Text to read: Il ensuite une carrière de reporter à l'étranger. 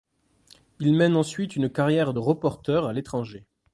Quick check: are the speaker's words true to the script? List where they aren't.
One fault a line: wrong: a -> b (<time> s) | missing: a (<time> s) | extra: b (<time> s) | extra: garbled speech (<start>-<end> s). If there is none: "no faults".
extra: mène (0.9 s)